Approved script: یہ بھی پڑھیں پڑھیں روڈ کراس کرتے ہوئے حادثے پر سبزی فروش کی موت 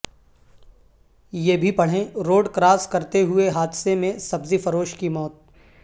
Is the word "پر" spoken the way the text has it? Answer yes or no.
no